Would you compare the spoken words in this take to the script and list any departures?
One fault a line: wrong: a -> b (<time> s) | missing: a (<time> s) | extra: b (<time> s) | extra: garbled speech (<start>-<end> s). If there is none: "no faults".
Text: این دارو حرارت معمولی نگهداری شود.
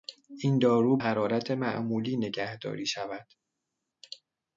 no faults